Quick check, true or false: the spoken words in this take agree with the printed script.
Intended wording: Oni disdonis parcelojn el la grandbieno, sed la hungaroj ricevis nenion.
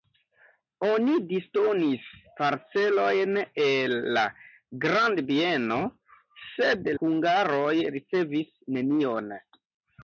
false